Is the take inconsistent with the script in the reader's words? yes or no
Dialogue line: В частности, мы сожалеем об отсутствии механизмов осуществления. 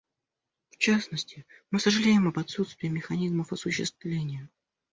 no